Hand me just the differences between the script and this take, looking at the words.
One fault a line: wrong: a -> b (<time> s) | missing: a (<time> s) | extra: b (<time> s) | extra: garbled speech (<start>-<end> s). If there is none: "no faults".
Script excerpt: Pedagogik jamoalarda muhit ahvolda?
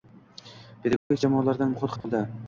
no faults